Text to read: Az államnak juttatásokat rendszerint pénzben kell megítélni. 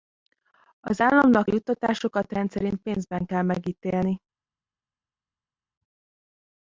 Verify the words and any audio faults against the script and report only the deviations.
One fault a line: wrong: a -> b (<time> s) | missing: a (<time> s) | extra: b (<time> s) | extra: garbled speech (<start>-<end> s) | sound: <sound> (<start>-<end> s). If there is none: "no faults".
no faults